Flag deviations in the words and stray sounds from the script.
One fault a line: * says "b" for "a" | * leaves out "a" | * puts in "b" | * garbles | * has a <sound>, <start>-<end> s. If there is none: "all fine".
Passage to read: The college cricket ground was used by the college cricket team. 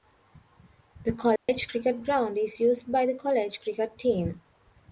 * has a dropout, 1.4-1.5 s
* says "is" for "was"